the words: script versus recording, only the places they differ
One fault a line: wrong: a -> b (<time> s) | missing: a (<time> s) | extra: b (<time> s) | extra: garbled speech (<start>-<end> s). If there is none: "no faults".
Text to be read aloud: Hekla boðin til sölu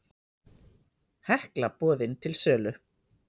no faults